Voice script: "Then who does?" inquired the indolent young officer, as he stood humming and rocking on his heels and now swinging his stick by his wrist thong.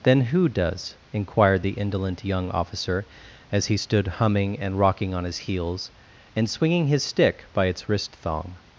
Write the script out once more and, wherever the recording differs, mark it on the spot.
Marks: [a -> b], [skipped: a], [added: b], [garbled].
"Then who does?" inquired the indolent young officer, as he stood humming and rocking on his heels and [skipped: now] swinging his stick by [his -> its] wrist thong.